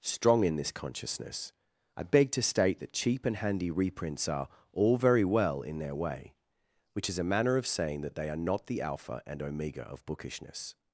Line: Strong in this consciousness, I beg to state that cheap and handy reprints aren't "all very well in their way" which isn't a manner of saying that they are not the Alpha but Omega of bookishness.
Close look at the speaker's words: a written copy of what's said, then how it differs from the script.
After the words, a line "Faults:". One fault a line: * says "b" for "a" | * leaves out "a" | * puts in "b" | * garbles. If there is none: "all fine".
Strong in this consciousness, I beg to state that cheap and handy reprints are "all very well in their way" which is a manner of saying that they are not the Alpha and Omega of bookishness.
Faults:
* says "are" for "aren't"
* says "is" for "isn't"
* says "and" for "but"